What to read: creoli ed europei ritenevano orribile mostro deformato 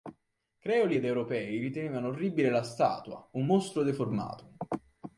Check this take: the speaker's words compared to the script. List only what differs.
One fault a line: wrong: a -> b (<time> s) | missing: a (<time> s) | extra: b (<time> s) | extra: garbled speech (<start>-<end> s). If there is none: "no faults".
extra: la statua un (2.5 s)